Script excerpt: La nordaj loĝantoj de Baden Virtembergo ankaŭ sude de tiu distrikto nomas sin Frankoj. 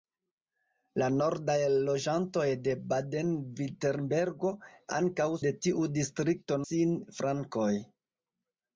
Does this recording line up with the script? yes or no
no